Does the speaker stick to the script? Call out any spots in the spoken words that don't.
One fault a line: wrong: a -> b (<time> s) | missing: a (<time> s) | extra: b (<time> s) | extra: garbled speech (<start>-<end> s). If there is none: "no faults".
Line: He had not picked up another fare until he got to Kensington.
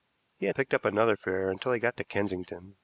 missing: not (0.6 s)